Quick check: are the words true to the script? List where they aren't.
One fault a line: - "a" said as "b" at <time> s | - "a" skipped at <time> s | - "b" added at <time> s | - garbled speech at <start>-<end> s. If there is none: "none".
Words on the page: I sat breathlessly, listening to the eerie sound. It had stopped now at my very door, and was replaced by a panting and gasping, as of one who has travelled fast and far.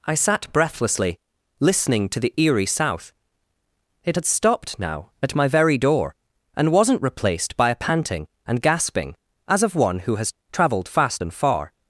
- "sound" said as "south" at 2.6 s
- "was" said as "wasn't" at 6.7 s